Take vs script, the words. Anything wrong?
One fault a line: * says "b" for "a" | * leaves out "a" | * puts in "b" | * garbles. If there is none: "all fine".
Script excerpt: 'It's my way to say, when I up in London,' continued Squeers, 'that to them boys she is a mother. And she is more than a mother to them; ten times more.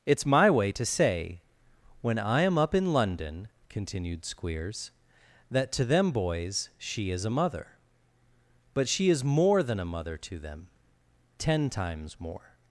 * puts in "am"
* says "But" for "And"